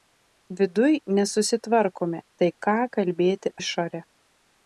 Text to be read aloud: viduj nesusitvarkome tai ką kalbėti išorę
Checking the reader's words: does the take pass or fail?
pass